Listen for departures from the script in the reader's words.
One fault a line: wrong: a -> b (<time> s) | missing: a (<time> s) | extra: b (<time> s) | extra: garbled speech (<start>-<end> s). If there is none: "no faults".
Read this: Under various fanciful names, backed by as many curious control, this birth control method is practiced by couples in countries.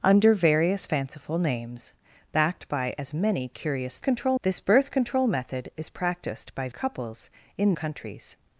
no faults